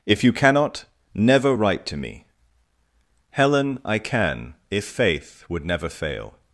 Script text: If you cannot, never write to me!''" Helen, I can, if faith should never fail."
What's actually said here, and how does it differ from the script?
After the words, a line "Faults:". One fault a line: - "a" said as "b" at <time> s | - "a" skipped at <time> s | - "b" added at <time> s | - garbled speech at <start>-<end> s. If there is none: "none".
If you cannot, never write to me!''" Helen, I can, if faith would never fail."
Faults:
- "should" said as "would" at 5.5 s